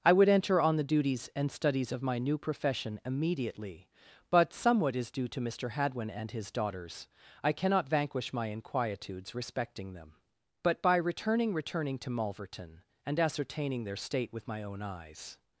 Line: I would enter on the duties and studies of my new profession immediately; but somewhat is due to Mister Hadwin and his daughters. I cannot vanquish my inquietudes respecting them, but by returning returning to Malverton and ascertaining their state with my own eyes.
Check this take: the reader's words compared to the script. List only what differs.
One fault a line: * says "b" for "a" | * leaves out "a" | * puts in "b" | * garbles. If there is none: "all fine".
all fine